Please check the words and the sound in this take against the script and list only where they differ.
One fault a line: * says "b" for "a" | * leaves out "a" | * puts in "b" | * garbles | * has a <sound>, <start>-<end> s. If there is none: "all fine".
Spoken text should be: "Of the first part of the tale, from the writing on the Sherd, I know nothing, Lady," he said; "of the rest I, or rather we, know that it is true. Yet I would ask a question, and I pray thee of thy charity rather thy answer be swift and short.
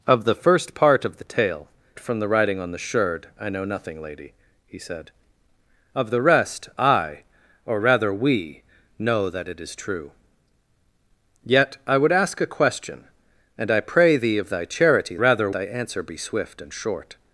all fine